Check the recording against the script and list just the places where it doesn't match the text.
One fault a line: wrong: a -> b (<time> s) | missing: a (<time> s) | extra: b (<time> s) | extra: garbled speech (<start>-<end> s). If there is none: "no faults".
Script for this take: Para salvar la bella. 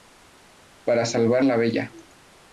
no faults